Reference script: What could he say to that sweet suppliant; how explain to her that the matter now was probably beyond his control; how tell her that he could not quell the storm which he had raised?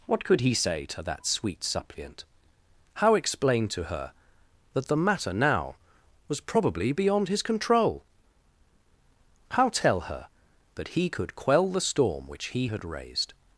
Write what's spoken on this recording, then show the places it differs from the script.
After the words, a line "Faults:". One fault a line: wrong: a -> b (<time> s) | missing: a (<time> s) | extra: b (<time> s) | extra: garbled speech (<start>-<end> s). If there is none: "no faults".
What could he say to that sweet suppliant; how explain to her that the matter now was probably beyond his control; how tell her that he could quell the storm which he had raised?
Faults:
missing: not (11.3 s)